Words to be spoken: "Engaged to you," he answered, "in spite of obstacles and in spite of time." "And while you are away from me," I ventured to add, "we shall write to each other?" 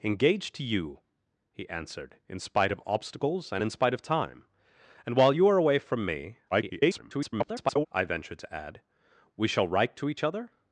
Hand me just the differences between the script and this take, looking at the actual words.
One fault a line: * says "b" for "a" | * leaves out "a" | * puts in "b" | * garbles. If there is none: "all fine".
* garbles